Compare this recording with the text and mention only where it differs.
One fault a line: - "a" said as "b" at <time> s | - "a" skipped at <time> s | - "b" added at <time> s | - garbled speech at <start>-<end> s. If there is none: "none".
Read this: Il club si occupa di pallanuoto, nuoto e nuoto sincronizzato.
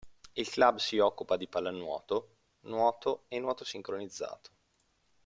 none